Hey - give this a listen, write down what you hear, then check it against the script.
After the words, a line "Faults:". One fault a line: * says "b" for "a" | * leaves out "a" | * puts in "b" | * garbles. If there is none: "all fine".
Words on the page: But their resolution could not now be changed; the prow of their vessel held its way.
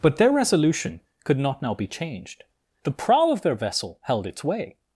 But their resolution could not now be changed; the prow of their vessel held its way.
Faults:
all fine